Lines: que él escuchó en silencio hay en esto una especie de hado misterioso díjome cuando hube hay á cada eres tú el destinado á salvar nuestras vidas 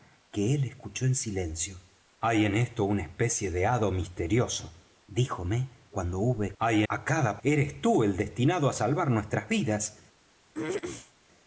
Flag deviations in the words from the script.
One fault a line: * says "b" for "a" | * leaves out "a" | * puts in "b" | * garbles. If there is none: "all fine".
all fine